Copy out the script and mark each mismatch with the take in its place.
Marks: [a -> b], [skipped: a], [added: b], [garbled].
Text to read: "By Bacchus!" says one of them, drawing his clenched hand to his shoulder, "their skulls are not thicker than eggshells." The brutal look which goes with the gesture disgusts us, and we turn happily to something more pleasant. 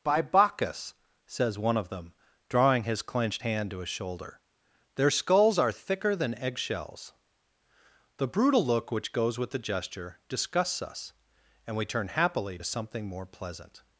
"By Bacchus!" says one of them, drawing his clenched hand to his shoulder, "their skulls are [skipped: not] thicker than eggshells." The brutal look which goes with the gesture disgusts us, and we turn happily to something more pleasant.